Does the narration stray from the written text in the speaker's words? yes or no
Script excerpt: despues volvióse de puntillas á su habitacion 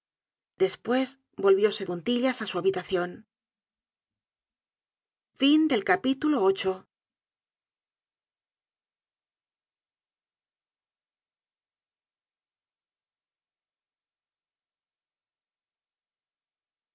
yes